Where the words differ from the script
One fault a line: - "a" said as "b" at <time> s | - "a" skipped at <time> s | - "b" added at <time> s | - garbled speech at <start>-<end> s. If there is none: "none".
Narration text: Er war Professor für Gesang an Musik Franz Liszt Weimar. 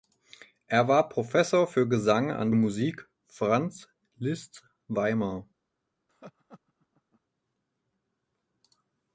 none